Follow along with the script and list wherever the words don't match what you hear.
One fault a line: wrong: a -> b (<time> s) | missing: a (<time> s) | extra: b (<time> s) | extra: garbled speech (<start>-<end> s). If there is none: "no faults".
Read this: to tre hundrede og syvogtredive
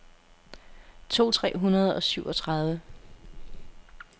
no faults